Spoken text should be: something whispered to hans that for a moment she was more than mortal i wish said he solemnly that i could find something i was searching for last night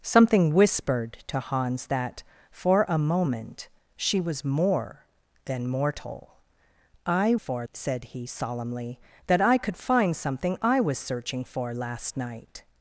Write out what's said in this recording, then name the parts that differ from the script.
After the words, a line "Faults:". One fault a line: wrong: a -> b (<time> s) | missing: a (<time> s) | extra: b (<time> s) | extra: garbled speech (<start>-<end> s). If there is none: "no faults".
something whispered to hans that for a moment she was more than mortal i for said he solemnly that i could find something i was searching for last night
Faults:
wrong: wish -> for (7.4 s)